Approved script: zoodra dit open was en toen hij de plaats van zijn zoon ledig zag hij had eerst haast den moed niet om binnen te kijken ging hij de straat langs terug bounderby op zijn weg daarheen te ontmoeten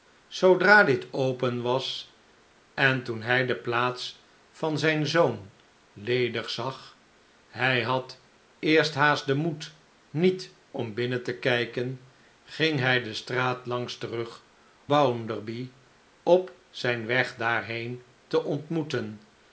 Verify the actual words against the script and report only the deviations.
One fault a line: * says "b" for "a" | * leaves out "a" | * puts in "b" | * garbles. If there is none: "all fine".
all fine